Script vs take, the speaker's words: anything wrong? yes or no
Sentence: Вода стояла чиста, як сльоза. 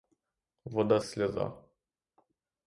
yes